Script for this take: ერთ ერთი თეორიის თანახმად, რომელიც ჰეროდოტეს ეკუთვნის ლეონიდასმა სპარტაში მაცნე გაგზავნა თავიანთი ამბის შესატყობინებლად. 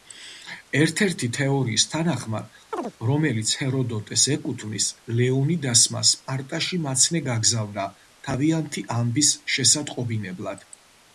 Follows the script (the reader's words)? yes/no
yes